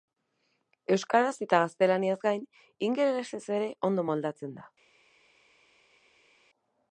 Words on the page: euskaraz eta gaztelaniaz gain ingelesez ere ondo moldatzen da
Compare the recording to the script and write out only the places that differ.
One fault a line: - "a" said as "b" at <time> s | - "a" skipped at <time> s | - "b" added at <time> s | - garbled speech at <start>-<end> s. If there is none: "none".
none